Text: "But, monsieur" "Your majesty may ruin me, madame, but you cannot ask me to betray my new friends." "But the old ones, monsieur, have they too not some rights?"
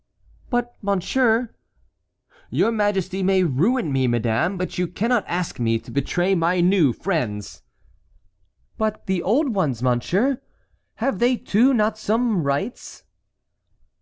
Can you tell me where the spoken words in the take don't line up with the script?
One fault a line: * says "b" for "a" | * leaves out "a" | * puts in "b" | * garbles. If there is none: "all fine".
all fine